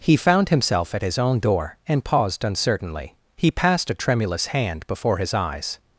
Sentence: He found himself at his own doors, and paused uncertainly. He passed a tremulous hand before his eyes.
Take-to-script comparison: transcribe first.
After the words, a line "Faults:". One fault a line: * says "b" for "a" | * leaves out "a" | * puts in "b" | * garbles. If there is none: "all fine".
He found himself at his own door, and paused uncertainly. He passed a tremulous hand before his eyes.
Faults:
* says "door" for "doors"